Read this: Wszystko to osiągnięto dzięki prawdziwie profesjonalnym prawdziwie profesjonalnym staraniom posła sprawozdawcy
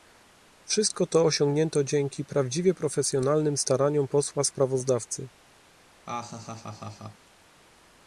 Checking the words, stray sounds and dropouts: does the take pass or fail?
fail